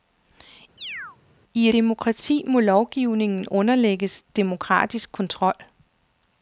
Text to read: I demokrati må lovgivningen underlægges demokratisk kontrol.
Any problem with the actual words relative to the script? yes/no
no